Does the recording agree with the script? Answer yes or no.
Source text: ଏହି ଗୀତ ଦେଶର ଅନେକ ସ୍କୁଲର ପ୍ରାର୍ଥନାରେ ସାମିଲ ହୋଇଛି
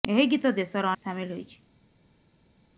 no